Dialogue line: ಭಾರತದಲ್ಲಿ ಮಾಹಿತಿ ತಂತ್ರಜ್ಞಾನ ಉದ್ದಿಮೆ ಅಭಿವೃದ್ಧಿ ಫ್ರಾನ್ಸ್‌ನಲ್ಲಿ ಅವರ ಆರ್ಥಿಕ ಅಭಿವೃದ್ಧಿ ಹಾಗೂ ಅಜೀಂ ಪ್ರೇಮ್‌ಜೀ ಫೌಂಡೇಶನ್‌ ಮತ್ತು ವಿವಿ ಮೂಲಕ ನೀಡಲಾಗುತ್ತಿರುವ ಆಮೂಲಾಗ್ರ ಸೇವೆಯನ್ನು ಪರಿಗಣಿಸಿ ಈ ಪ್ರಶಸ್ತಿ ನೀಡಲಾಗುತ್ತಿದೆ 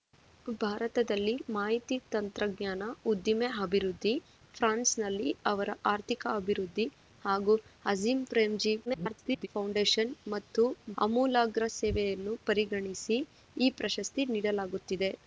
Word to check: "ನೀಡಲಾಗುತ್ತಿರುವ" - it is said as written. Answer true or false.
false